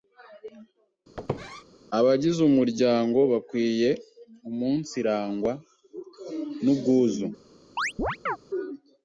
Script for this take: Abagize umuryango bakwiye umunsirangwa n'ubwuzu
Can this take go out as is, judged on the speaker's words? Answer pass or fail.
pass